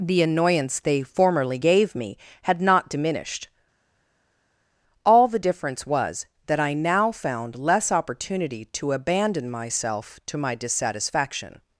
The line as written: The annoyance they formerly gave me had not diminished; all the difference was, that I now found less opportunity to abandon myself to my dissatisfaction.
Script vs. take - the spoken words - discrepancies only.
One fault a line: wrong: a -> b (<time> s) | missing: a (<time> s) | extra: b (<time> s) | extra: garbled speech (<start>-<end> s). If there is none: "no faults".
no faults